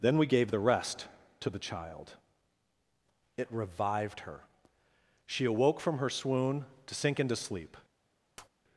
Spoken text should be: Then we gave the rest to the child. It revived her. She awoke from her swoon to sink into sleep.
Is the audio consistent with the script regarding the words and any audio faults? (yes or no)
no